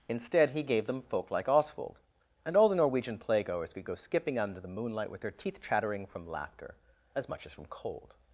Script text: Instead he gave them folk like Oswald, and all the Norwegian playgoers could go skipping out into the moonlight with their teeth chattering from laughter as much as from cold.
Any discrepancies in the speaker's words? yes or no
yes